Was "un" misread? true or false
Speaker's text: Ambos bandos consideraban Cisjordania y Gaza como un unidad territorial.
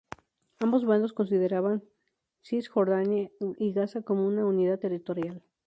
true